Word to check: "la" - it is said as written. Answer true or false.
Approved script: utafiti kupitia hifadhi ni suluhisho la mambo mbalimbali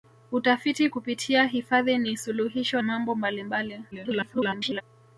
false